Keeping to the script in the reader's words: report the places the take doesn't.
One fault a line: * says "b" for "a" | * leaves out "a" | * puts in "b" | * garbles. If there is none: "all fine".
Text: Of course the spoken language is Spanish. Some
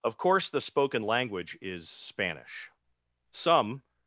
all fine